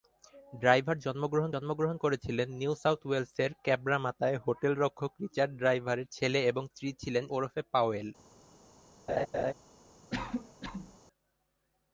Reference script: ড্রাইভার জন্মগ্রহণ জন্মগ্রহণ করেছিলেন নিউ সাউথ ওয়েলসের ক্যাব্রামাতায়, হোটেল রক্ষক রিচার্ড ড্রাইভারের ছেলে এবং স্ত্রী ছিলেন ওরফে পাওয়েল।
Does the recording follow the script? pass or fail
pass